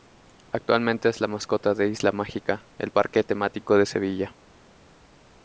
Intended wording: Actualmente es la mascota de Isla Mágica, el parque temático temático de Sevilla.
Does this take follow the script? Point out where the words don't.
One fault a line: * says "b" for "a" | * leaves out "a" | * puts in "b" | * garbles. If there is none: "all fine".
* leaves out "temático"